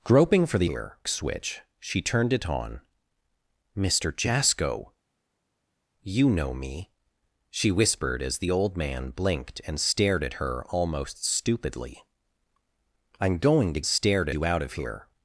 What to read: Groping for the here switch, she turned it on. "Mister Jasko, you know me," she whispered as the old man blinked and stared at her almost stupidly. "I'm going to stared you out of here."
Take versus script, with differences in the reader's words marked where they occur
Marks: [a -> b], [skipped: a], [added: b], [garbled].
Groping for the here switch, she turned it on. "Mister Jasko, you know me," she whispered as the old man blinked and stared at her almost stupidly. "I'm going to stared you out of here."